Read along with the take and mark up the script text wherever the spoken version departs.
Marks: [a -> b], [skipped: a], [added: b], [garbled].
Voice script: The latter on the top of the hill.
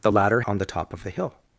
The latter on the top of the hill.